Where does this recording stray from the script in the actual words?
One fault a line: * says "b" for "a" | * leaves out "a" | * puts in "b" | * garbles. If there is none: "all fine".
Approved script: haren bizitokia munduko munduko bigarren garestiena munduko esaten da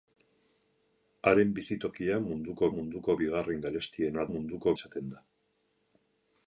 all fine